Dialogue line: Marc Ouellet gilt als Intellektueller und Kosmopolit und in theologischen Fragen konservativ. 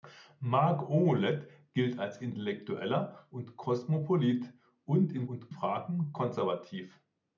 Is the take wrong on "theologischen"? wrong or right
wrong